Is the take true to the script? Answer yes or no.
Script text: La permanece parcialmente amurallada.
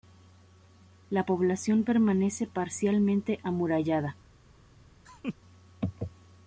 no